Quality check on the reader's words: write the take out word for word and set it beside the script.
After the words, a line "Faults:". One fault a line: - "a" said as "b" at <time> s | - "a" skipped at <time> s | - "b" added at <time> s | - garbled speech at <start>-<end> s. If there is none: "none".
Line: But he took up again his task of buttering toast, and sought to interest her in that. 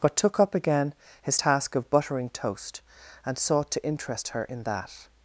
But took up again his task of buttering toast, and sought to interest her in that.
Faults:
- "he" skipped at 0.2 s